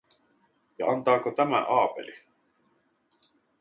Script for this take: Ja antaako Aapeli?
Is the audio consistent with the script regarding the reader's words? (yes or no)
no